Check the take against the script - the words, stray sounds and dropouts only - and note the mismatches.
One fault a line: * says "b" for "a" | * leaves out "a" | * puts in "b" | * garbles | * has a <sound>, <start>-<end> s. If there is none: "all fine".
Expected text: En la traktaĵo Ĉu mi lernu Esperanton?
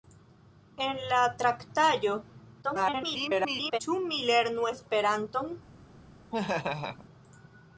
* garbles
* has a laugh, 6.3-7.1 s